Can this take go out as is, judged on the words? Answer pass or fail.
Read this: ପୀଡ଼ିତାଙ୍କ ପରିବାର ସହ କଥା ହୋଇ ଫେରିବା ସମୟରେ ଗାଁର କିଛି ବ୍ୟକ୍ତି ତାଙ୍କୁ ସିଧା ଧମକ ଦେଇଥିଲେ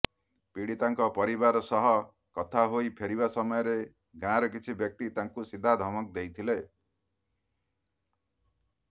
pass